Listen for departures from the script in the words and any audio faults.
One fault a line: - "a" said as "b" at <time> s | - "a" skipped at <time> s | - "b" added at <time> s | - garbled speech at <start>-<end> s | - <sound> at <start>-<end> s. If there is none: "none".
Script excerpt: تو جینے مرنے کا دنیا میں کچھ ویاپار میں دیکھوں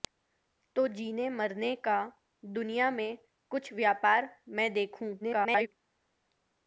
- garbled speech at 5.2-5.7 s